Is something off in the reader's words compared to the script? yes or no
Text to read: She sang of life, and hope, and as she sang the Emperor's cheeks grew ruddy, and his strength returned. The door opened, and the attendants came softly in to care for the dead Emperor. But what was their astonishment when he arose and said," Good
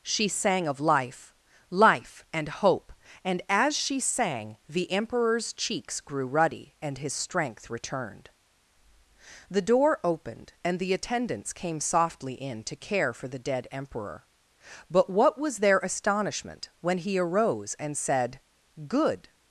yes